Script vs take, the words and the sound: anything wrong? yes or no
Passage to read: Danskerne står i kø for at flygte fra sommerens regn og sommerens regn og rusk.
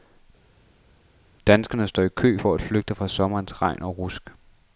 yes